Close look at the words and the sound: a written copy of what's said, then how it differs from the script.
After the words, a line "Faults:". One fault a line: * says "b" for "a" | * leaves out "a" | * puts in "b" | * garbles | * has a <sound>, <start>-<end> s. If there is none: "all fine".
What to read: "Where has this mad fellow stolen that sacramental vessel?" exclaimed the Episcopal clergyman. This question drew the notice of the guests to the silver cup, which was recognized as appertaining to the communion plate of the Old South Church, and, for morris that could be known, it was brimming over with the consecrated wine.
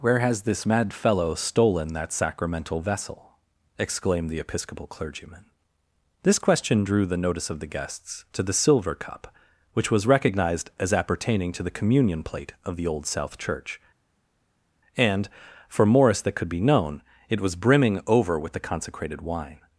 "Where has this mad fellow stolen that sacramental vessel?" exclaimed the Episcopal clergyman. This question drew the notice of the guests to the silver cup, which was recognized as appertaining to the communion plate of the Old South Church, and, for morris that could be known, it was brimming over with the consecrated wine.
Faults:
all fine